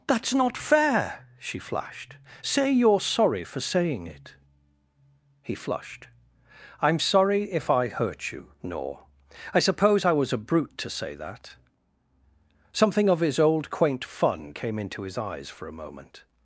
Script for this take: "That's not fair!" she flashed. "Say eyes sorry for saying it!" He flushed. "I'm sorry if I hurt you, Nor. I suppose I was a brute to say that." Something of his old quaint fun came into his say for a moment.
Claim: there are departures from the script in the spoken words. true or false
true